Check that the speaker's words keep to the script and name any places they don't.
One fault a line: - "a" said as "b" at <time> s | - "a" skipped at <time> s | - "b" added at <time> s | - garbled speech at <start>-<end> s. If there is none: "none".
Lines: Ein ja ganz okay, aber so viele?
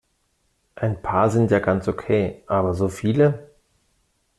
- "paar sind" added at 1.0 s